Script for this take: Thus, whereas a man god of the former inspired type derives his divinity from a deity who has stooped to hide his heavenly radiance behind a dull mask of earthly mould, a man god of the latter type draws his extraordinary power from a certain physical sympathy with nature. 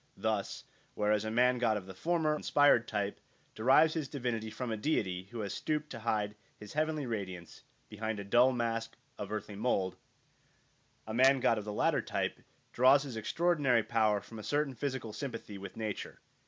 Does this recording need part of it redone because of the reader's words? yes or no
no